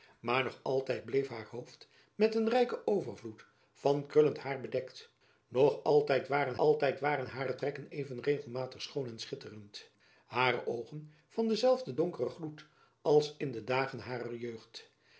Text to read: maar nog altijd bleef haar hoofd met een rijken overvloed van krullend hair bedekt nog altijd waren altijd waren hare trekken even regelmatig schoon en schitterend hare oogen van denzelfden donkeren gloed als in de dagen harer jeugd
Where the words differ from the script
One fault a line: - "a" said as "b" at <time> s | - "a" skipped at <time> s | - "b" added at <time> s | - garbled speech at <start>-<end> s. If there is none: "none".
none